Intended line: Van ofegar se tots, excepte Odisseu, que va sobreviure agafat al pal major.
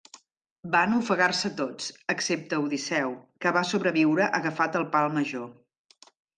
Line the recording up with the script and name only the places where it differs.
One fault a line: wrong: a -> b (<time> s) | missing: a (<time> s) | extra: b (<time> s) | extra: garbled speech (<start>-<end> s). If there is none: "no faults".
no faults